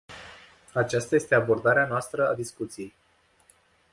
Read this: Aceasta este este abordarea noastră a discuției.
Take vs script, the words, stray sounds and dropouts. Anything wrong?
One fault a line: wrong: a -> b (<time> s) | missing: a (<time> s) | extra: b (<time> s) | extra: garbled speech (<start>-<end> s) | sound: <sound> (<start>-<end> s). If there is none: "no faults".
missing: este (1.4 s)